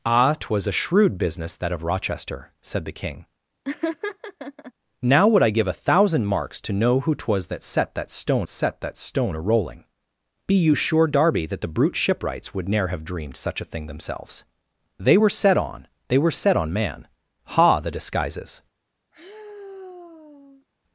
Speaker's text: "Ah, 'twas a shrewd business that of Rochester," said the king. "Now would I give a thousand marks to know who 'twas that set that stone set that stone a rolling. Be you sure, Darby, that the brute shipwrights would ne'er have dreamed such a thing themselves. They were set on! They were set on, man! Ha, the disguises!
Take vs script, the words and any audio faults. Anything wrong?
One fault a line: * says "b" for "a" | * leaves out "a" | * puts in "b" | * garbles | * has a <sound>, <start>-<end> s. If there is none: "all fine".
* has a laugh, 3.6-4.7 s
* has a sigh, 19.1-20.7 s